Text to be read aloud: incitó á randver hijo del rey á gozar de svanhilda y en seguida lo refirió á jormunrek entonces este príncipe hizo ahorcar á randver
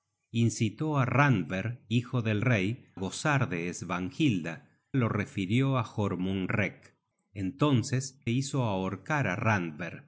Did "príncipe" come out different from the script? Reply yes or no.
yes